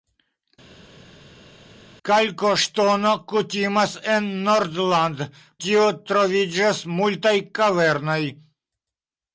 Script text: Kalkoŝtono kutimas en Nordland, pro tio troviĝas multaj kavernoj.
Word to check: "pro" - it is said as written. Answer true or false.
false